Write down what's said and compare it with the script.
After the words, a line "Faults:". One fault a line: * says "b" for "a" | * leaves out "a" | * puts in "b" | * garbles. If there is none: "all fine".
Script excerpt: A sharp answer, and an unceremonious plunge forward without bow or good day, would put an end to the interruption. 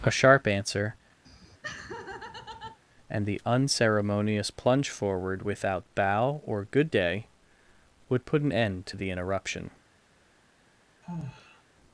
A sharp answer, and the unceremonious plunge forward without bow or good day, would put an end to the interruption.
Faults:
* says "the" for "an"